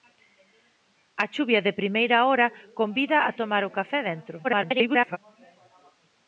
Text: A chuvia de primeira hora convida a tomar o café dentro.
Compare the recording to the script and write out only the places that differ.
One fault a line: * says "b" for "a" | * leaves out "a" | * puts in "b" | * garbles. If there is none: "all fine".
* garbles